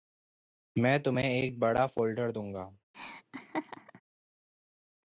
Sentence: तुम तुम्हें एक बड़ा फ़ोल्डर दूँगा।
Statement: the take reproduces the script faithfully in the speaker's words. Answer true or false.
false